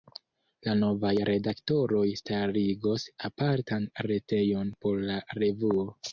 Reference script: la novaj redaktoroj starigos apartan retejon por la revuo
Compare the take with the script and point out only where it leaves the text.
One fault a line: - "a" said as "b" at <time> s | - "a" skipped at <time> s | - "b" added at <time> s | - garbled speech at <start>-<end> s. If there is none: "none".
none